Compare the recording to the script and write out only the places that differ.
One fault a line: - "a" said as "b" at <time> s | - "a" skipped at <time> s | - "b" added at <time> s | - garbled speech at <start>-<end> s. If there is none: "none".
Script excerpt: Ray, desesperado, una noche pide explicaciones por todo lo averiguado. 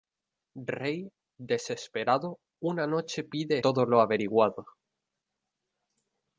- "explicaciones por" skipped at 3.6 s